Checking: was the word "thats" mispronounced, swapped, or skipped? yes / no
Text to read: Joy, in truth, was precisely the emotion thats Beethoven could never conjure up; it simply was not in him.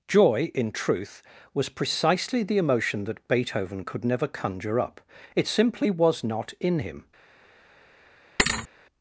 yes